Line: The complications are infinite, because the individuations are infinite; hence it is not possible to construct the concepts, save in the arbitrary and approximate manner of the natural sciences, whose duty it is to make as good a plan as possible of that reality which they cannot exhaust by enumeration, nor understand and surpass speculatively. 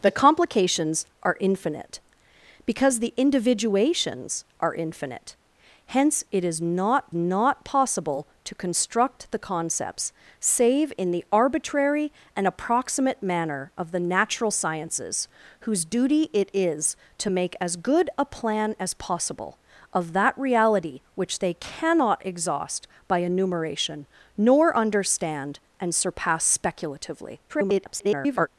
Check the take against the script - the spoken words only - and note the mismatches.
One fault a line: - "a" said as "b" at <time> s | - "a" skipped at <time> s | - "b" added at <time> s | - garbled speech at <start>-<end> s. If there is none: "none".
- "not" added at 7.1 s
- garbled speech at 27.5-28.5 s